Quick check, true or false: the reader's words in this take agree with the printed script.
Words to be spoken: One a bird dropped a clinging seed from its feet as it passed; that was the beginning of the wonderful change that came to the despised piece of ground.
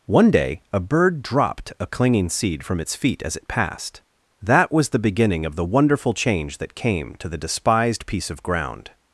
false